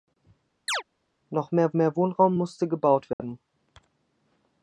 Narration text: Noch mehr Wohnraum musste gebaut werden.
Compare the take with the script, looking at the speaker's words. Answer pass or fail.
fail